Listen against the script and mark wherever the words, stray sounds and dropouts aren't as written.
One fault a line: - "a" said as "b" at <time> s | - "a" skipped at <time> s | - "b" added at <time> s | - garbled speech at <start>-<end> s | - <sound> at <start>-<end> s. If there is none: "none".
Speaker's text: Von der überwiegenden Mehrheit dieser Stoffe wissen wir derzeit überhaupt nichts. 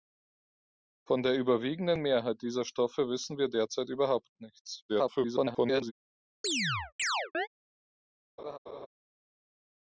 - garbled speech at 4.9-5.9 s
- chirp at 6.4-7.5 s
- laugh at 8.4-8.9 s